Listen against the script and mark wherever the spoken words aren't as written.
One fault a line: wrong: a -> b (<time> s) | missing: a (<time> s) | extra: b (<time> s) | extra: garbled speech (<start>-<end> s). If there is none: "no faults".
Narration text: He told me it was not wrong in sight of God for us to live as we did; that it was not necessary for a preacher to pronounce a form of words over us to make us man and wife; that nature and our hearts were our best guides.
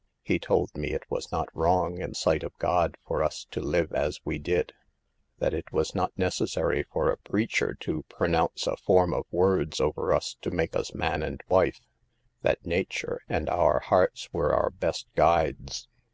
no faults